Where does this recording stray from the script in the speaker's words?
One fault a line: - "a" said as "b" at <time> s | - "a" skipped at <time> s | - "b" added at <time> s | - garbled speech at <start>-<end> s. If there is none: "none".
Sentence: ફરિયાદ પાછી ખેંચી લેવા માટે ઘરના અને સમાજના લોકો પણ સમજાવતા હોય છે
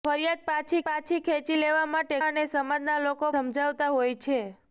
- "પાછી" added at 0.8 s
- "ઘરના" skipped at 2.2 s
- "પણ" skipped at 3.3 s